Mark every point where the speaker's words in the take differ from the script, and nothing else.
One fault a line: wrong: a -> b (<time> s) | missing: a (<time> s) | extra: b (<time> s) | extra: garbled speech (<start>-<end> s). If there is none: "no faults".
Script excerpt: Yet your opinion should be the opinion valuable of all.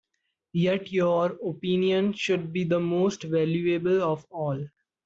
wrong: opinion -> most (2.8 s)